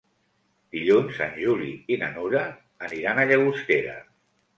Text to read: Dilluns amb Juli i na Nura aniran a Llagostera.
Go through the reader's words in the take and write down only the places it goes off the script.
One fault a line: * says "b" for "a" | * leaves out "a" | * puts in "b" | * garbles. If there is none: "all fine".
* says "en" for "amb"